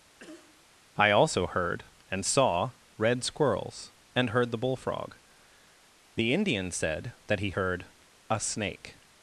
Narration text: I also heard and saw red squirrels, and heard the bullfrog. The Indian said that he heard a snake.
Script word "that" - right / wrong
right